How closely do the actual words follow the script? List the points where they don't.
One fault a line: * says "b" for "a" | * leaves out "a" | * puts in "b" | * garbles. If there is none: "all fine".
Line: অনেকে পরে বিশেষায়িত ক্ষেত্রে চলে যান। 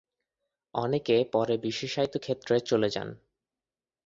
all fine